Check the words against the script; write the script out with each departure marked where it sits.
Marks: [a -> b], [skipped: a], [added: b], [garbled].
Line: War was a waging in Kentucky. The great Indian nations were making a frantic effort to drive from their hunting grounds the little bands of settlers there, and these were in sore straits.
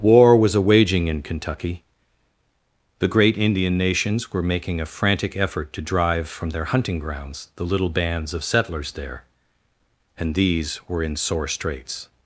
War was a waging in Kentucky. The great Indian nations were making a frantic effort to drive from their hunting grounds the little bands of settlers there, and these were in sore straits.